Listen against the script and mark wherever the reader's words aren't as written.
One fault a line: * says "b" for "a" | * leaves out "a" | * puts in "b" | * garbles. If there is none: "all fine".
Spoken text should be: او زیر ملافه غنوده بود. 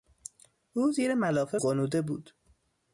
all fine